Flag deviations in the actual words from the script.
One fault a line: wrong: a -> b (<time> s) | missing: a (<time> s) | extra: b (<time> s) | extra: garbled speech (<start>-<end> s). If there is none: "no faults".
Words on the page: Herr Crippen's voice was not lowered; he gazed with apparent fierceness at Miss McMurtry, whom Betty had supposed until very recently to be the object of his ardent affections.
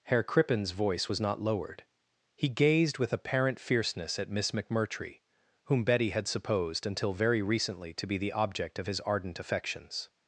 no faults